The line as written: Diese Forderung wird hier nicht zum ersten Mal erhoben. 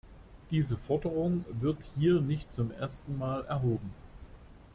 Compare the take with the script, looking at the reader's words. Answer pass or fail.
pass